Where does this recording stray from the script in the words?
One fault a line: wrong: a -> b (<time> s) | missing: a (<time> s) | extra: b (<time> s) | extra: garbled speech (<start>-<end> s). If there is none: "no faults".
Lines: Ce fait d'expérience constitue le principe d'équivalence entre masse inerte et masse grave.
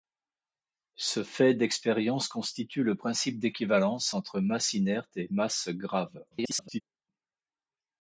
extra: garbled speech (6.3-6.8 s)